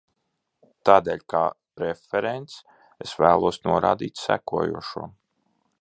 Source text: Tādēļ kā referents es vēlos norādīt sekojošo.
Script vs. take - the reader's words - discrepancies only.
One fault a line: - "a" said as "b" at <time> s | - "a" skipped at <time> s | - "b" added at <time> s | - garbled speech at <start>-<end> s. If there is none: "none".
none